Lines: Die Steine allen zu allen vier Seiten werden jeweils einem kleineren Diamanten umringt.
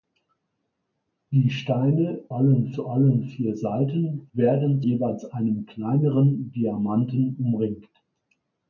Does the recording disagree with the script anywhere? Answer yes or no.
no